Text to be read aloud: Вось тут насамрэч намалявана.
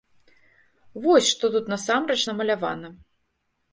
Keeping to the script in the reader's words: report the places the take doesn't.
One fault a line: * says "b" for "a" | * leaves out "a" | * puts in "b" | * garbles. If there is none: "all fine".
* puts in "што"